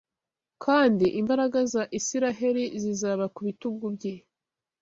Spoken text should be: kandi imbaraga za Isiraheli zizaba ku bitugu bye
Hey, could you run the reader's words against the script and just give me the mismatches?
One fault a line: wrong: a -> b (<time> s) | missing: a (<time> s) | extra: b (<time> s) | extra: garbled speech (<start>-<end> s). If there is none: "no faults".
no faults